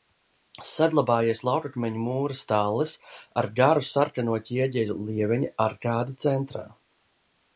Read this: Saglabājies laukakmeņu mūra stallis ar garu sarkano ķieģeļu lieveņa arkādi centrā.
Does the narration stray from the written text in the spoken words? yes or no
no